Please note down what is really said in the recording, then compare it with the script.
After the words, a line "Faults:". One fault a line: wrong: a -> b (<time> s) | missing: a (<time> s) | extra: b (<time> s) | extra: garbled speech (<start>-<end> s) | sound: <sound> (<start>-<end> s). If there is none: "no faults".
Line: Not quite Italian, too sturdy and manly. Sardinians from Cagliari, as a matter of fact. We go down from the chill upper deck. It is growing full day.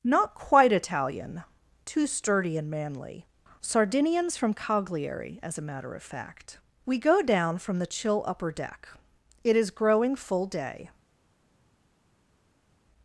Not quite Italian, too sturdy and manly. Sardinians from Cagliari, as a matter of fact. We go down from the chill upper deck. It is growing full day.
Faults:
no faults